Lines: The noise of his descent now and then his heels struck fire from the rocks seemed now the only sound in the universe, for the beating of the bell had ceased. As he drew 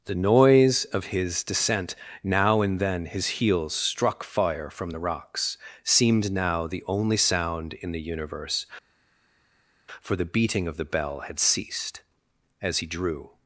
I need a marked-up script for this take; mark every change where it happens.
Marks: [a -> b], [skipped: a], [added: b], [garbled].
The noise of his descent now and then his heels struck fire from the rocks seemed now the only sound in the universe, for the beating of the bell had ceased. As he drew